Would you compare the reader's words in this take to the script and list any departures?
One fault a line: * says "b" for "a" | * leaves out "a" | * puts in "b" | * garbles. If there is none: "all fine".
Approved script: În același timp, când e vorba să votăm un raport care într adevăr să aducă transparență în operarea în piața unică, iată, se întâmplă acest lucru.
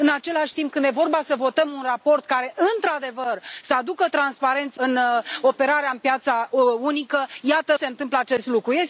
all fine